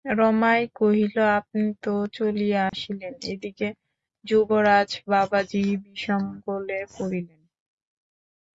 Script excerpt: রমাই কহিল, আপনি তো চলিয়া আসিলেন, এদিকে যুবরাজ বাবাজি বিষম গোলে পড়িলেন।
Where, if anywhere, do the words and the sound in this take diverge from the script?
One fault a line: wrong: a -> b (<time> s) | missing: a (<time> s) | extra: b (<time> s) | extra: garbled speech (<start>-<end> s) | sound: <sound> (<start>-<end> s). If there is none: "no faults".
sound: dropout (2.7-2.7 s)